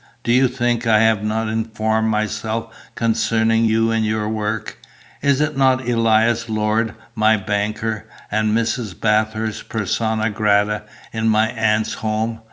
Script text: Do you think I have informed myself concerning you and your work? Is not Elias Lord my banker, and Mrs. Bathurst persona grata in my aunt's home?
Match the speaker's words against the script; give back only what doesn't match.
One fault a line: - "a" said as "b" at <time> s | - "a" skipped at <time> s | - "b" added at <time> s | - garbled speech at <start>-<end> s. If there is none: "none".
- "not" added at 1.2 s